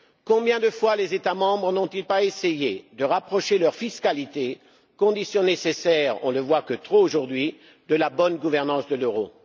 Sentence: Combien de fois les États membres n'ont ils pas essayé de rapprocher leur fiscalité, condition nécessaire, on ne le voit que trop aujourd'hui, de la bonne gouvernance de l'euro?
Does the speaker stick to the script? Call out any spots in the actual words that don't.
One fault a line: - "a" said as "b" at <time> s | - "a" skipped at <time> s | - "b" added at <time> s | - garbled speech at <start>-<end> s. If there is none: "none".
none